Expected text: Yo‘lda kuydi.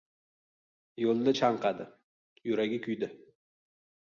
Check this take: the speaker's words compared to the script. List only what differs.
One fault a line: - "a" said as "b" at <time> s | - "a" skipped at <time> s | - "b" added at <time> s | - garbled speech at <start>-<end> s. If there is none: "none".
- "chanqadi Yuragi" added at 1.4 s